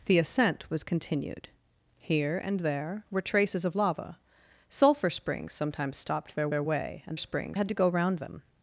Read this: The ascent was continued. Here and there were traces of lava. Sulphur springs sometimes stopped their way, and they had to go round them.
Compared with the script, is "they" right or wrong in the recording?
wrong